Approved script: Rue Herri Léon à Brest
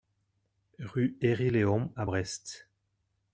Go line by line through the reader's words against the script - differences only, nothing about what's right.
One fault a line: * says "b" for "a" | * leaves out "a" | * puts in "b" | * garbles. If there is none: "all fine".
all fine